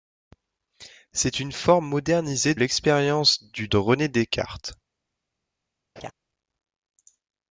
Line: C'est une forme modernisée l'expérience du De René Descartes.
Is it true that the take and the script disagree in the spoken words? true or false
false